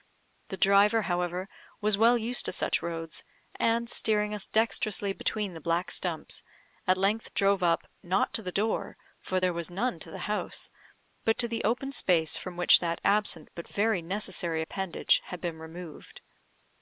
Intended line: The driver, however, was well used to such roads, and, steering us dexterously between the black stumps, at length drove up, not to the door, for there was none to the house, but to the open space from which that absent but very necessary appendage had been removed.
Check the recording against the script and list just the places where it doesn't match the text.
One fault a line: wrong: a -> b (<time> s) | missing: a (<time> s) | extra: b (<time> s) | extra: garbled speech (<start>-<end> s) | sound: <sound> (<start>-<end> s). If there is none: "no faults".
no faults